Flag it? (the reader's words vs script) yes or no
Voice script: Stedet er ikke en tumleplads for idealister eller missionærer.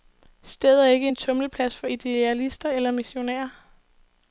no